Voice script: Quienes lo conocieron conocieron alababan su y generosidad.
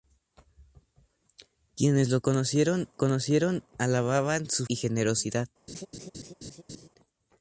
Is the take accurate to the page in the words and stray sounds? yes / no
no